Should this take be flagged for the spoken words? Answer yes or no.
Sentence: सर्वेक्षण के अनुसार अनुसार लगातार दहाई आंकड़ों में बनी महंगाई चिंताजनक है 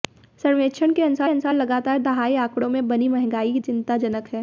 no